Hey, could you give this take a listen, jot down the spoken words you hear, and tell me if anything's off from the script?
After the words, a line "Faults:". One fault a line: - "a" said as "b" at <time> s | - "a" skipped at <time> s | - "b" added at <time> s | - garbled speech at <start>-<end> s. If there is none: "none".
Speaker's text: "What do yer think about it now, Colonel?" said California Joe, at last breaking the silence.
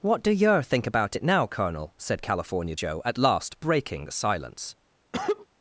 "What do yer think about it now, Colonel?" said California Joe, at last breaking the silence.
Faults:
none